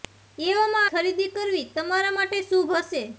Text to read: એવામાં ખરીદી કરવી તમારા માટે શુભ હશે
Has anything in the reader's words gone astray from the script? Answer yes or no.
no